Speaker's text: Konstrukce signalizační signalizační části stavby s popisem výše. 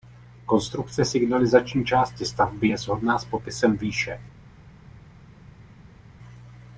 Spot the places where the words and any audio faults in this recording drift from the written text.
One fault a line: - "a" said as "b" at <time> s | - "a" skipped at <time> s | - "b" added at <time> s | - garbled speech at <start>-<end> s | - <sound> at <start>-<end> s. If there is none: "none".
- "signalizační" skipped at 1.9 s
- "je shodná" added at 2.6 s